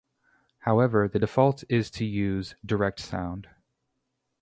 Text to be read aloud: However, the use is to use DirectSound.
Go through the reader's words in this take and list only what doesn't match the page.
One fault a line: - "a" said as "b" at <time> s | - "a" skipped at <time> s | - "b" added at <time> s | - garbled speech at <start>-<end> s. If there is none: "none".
- "use" said as "default" at 1.2 s